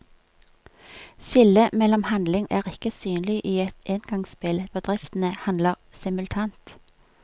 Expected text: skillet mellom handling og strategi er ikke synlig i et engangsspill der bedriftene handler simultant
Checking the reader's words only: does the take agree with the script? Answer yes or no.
no